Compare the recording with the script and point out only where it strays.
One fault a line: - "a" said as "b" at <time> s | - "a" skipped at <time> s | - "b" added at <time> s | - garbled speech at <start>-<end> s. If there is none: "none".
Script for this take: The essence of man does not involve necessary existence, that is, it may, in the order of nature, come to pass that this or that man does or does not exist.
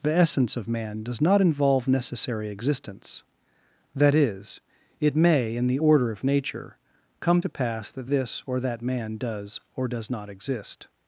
none